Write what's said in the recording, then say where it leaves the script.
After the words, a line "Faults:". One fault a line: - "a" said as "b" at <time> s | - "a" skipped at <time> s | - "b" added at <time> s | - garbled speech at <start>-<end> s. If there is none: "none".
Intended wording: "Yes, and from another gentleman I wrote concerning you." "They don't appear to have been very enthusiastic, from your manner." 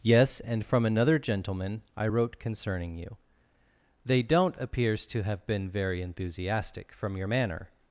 "Yes, and from another gentleman I wrote concerning you." "They don't appears to have been very enthusiastic, from your manner."
Faults:
- "appear" said as "appears" at 4.6 s